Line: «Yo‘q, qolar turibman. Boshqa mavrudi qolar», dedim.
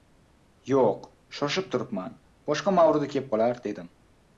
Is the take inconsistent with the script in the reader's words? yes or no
yes